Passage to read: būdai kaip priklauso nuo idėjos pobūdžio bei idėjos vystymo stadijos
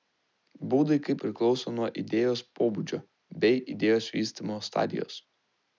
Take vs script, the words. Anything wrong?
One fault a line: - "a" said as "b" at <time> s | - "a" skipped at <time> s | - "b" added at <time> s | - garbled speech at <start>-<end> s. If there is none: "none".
none